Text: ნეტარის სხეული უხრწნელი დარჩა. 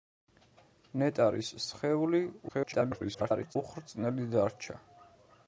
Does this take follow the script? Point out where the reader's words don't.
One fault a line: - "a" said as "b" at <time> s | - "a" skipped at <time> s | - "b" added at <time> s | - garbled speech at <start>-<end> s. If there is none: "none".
- garbled speech at 2.5-3.6 s